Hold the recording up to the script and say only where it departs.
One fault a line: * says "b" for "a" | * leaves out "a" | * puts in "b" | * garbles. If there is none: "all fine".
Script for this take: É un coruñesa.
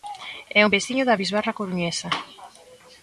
* puts in "veciño da bisbarra"